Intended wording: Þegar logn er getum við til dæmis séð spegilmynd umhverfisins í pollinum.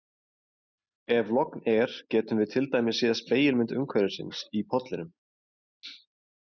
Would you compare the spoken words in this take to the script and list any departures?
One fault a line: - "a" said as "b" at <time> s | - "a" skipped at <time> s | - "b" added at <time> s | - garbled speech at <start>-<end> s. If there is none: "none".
- "Þegar" said as "Ef" at 1.1 s